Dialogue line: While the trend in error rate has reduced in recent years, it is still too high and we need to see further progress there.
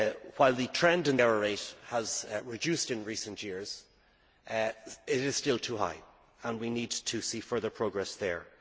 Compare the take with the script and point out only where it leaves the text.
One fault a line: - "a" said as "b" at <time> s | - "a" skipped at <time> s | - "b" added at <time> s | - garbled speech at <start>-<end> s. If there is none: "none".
none